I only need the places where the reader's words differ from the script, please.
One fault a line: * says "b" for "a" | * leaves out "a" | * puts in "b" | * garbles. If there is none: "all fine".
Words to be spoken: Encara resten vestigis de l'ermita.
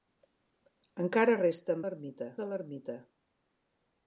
* says "l'ermita" for "vestigis"